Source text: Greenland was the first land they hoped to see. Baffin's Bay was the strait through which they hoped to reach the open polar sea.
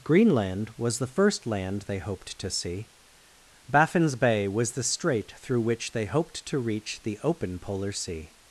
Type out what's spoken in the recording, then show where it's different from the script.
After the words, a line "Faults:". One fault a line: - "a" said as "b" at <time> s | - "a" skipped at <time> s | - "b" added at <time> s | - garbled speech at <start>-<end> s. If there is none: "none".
Greenland was the first land they hoped to see. Baffin's Bay was the strait through which they hoped to reach the open polar sea.
Faults:
none